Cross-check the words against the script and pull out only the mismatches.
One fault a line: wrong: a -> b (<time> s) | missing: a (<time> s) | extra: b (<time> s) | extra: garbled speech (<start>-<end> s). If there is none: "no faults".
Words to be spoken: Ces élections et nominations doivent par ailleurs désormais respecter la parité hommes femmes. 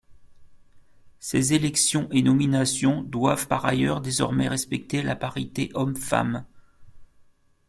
no faults